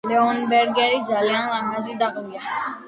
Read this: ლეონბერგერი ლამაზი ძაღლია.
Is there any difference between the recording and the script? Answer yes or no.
yes